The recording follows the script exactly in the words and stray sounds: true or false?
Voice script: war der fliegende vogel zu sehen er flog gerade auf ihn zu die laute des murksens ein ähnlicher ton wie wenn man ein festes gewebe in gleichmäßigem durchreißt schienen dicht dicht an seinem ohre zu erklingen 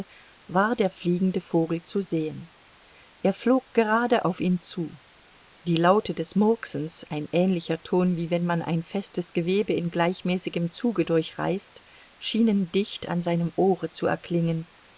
false